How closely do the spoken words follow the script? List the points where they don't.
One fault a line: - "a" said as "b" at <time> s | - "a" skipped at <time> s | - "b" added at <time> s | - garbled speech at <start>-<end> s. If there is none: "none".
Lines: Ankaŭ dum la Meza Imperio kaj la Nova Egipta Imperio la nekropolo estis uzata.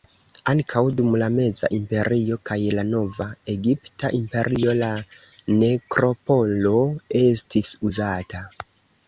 none